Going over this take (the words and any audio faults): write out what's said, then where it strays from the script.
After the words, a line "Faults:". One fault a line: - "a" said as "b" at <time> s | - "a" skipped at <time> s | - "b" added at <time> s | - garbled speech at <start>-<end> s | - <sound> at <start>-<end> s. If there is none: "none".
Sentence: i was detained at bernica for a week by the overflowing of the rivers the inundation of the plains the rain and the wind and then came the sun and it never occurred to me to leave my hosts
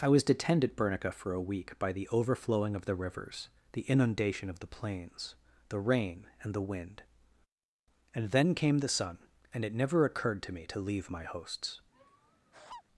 i was detained at bernica for a week by the overflowing of the rivers the inundation of the plains the rain and the wind and then came the sun and it never occurred to me to leave my hosts
Faults:
- laugh at 11.9-12.8 s